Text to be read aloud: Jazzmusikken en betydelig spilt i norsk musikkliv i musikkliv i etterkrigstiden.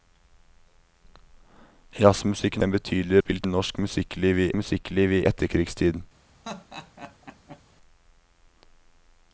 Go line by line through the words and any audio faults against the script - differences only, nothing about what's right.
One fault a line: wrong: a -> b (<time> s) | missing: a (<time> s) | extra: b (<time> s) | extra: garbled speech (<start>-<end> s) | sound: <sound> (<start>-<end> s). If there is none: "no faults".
sound: laugh (6.4-7.6 s)